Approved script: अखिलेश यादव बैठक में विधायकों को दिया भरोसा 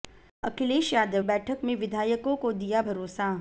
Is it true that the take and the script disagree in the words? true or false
false